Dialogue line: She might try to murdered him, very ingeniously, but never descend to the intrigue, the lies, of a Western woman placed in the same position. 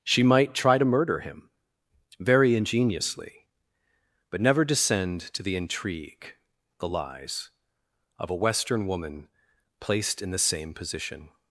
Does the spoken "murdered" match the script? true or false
false